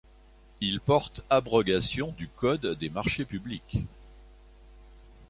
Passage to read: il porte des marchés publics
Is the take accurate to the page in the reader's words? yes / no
no